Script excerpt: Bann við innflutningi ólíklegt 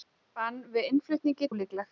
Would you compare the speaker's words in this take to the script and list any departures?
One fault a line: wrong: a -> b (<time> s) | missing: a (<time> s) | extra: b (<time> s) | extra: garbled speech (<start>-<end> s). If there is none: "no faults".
no faults